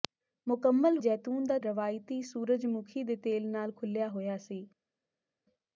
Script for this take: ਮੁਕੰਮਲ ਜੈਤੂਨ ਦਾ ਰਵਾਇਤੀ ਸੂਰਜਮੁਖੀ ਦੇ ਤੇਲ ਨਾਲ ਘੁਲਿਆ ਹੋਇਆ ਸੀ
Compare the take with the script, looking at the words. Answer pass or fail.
pass